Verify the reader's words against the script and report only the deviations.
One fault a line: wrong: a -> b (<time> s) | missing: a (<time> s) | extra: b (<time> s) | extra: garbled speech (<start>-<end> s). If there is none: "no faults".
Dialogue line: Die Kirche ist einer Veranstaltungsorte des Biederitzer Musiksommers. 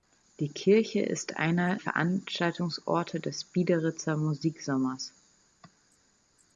no faults